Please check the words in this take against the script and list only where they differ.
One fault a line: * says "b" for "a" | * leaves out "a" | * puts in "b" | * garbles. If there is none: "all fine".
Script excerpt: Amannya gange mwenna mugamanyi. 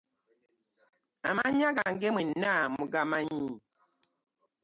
all fine